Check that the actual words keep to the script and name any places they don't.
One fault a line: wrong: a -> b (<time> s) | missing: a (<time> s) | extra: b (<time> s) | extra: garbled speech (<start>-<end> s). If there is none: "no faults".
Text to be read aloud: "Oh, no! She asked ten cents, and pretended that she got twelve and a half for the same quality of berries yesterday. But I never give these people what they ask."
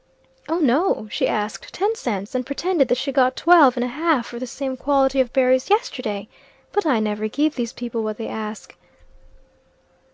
no faults